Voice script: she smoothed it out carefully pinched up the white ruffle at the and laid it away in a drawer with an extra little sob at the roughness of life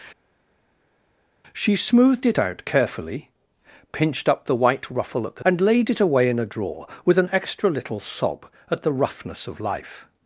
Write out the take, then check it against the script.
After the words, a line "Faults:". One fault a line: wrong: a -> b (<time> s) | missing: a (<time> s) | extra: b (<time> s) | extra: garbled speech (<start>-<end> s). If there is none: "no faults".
she smoothed it out carefully pinched up the white ruffle at the and laid it away in a drawer with an extra little sob at the roughness of life
Faults:
no faults